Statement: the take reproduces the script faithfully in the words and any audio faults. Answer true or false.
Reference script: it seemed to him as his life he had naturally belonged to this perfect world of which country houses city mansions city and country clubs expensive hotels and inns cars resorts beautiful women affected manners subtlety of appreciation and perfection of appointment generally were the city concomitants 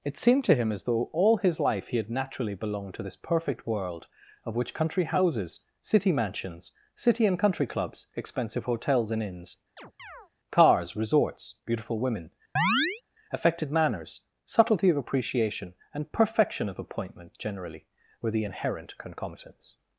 false